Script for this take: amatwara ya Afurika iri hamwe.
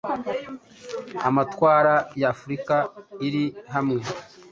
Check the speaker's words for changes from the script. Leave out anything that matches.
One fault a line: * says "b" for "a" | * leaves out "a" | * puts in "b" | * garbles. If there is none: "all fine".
all fine